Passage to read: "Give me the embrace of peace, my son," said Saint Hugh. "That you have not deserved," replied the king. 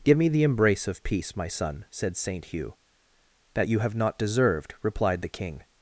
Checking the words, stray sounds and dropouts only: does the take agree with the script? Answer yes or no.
yes